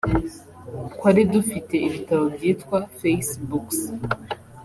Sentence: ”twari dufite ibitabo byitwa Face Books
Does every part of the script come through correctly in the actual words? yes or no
yes